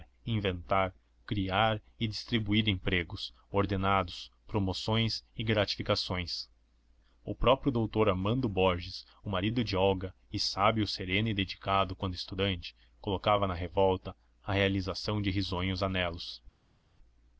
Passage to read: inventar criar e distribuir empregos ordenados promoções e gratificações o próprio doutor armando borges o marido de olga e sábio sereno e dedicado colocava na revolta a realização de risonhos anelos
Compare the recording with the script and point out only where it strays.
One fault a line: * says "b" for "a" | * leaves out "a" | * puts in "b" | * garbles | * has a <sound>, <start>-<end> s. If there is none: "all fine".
* puts in "quando estudante"